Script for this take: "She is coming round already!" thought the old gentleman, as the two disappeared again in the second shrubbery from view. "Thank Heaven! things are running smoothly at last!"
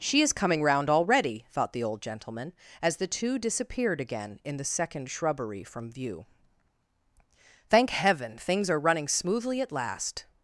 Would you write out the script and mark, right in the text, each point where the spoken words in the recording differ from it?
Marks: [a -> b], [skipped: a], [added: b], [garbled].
"She is coming round already!" thought the old gentleman, as the two disappeared again in the second shrubbery from view. "Thank Heaven! things are running smoothly at last!"